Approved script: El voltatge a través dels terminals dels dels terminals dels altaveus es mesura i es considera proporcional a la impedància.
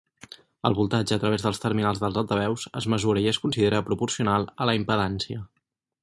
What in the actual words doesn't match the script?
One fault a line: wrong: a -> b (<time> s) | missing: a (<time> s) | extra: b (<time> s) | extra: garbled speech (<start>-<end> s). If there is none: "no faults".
missing: dels terminals dels (2.2 s)